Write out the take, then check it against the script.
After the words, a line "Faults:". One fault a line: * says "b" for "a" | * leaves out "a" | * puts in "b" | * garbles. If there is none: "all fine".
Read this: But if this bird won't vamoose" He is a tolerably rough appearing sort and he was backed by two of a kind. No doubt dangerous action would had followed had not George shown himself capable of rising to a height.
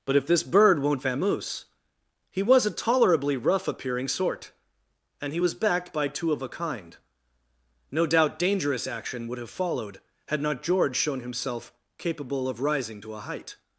But if this bird won't vamoose" He was a tolerably rough appearing sort and he was backed by two of a kind. No doubt dangerous action would have followed had not George shown himself capable of rising to a height.
Faults:
* says "was" for "is"
* says "have" for "had"